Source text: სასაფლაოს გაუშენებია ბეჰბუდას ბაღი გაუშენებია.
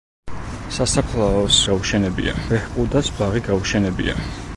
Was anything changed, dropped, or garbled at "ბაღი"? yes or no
no